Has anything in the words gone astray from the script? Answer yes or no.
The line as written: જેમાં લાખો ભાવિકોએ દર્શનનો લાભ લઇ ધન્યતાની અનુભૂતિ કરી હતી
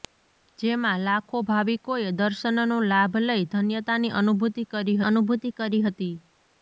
yes